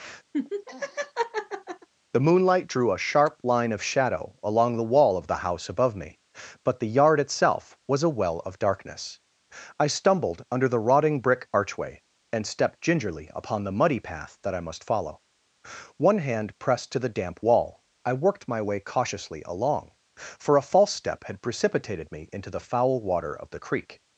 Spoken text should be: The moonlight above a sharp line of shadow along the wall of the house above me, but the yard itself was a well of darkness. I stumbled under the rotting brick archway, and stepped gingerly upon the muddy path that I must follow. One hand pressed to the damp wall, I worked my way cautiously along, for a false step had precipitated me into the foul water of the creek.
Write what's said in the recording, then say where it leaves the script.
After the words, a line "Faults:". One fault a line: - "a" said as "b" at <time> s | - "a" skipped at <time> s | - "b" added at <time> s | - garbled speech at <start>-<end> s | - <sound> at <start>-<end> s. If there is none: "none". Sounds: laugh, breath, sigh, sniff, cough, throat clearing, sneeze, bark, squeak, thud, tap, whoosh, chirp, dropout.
The moonlight drew a sharp line of shadow along the wall of the house above me, but the yard itself was a well of darkness. I stumbled under the rotting brick archway, and stepped gingerly upon the muddy path that I must follow. One hand pressed to the damp wall, I worked my way cautiously along, for a false step had precipitated me into the foul water of the creek.
Faults:
- laugh at 0.3-1.9 s
- "above" said as "drew" at 2.7 s